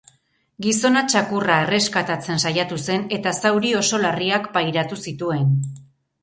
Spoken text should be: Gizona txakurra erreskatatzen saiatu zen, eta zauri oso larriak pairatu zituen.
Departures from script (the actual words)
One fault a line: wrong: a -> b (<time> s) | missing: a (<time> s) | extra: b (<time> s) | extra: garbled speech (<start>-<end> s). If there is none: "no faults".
no faults